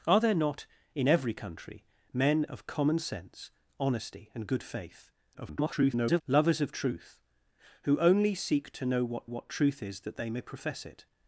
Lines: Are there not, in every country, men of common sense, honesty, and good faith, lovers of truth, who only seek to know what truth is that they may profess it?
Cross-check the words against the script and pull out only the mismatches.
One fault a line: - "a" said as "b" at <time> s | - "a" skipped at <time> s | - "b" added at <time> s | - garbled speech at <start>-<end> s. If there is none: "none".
- garbled speech at 5.3-6.2 s
- "what" added at 9.2 s